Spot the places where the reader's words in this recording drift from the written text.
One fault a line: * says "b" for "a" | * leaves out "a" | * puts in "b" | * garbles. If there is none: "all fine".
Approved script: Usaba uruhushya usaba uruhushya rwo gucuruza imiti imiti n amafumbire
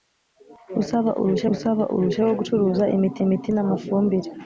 all fine